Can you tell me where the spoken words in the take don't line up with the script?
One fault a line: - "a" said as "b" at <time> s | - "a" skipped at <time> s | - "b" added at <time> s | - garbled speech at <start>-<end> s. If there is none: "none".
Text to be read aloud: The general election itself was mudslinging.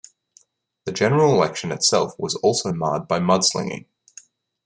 - "also marred by" added at 2.4 s